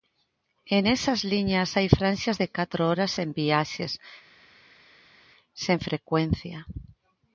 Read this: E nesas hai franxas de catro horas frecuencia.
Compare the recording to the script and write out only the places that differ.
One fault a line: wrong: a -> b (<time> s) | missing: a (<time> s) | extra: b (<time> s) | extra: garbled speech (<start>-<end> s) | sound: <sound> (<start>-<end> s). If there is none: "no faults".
extra: liñas (1.3 s)
extra: sen viaxes sen (3.1 s)